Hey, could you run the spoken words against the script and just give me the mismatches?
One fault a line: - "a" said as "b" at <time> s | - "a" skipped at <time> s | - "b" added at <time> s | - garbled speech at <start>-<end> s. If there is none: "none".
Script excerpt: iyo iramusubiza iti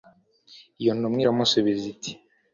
- "ntumwa" added at 1.0 s